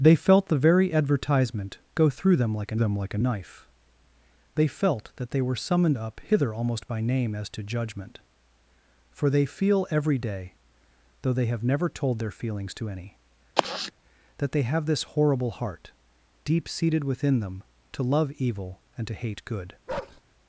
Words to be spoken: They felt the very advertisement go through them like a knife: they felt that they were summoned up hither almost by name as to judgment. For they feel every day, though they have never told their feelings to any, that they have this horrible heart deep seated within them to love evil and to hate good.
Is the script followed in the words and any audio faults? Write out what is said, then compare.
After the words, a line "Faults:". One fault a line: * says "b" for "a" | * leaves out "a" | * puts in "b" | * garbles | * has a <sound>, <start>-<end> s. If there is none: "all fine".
They felt the very advertisement go through them like a them like a knife: they felt that they were summoned up hither almost by name as to judgment. For they feel every day, though they have never told their feelings to any, that they have this horrible heart deep seated within them to love evil and to hate good.
Faults:
* puts in "them like a"
* has a sigh, 13.6-13.9 s
* has a bark, 19.9-20.2 s